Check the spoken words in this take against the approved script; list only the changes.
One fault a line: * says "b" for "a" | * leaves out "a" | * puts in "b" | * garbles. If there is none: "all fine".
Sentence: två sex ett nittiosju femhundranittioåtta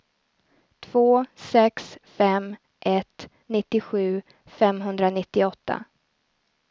* puts in "fem"